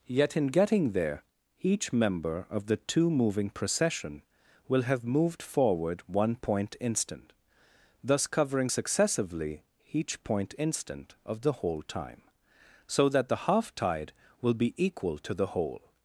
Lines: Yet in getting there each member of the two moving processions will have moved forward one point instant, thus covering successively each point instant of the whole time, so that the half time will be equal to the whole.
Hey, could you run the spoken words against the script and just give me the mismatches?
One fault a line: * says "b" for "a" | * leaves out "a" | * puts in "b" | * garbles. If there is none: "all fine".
* says "procession" for "processions"
* says "tide" for "time"